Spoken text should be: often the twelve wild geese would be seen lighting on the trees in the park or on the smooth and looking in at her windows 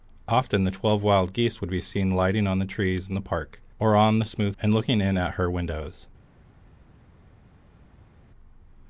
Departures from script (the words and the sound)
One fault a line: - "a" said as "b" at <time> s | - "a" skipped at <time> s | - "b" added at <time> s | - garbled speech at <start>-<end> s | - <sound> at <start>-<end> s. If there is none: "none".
none